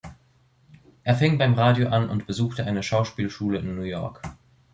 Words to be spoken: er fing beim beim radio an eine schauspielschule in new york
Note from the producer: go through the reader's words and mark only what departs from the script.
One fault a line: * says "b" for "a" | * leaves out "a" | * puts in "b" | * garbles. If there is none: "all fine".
* leaves out "beim"
* puts in "und besuchte"